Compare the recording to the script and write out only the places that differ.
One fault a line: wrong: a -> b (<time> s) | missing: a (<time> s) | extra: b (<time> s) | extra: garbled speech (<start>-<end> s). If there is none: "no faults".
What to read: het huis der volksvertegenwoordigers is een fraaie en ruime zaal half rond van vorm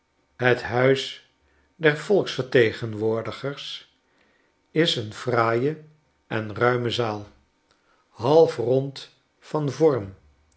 no faults